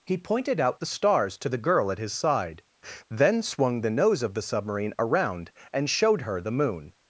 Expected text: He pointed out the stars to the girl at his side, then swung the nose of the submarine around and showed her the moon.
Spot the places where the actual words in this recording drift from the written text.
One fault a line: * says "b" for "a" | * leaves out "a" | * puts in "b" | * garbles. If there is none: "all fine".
all fine